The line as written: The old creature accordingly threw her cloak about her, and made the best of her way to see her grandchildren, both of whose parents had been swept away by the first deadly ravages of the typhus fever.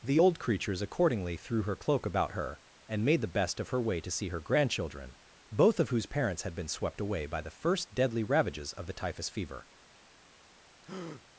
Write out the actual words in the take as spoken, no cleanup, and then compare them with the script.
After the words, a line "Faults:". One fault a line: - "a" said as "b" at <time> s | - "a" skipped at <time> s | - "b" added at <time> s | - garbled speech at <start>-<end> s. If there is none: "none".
The old creatures accordingly threw her cloak about her, and made the best of her way to see her grandchildren, both of whose parents had been swept away by the first deadly ravages of the typhus fever.
Faults:
- "creature" said as "creatures" at 0.4 s